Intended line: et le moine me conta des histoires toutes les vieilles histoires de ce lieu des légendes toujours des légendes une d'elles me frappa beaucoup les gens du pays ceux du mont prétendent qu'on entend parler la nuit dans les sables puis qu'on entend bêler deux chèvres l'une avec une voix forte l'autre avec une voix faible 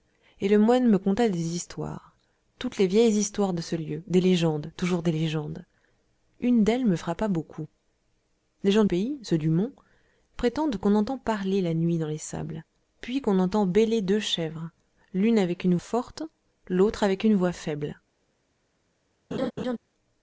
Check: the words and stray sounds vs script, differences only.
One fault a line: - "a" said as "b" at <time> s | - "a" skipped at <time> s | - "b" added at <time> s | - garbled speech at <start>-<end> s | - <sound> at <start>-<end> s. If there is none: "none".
- "du" skipped at 8.8 s
- "voix" skipped at 15.8 s
- laugh at 19.3-19.8 s